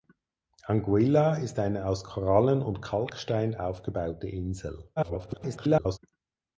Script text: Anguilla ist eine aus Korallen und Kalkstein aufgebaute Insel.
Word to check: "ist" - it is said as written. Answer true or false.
true